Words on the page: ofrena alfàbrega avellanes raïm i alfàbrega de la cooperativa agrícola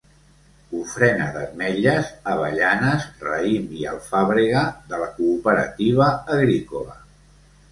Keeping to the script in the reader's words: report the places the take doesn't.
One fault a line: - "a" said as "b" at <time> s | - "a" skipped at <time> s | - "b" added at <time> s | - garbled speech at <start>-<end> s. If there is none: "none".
- "alfàbrega" said as "d'ametlles" at 1.4 s